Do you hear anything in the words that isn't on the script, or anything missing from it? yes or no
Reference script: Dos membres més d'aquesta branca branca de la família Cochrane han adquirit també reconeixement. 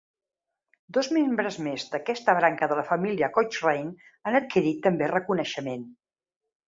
yes